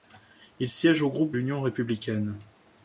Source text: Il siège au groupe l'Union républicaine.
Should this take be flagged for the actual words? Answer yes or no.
no